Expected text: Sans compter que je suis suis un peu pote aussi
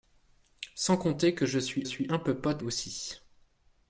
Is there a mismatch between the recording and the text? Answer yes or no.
no